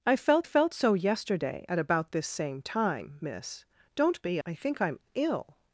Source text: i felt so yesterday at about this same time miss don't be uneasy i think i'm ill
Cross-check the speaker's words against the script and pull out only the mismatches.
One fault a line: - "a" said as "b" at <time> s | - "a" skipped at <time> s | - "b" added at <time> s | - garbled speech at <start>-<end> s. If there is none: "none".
- "felt" added at 0.4 s
- "uneasy" skipped at 4.4 s